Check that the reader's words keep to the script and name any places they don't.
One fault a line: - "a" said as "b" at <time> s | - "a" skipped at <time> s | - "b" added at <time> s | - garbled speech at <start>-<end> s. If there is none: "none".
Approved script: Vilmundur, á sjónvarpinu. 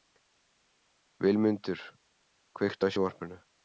- "kveiktu" added at 2.6 s